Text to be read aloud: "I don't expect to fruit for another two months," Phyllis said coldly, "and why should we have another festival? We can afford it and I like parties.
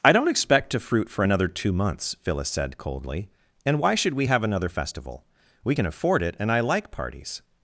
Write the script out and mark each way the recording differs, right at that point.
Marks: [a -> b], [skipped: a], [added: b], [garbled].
"I don't expect to fruit for another two months," Phyllis said coldly, "and why should we have another festival? We can afford it and I like parties.